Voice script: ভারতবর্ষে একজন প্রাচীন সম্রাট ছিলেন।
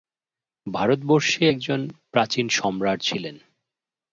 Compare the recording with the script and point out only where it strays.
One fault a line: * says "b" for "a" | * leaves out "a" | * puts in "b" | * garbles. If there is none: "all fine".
all fine